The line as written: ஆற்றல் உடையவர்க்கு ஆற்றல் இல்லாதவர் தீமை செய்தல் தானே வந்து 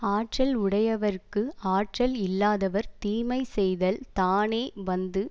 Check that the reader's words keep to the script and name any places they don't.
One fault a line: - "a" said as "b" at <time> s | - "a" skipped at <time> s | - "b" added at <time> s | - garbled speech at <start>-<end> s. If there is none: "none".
none